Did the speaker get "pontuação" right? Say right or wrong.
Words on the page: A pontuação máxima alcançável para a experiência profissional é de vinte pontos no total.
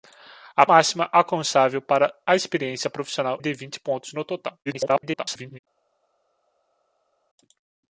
wrong